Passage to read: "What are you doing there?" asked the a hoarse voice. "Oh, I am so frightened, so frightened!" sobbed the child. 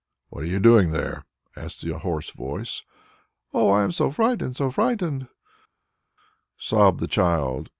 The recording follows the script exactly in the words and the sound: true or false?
true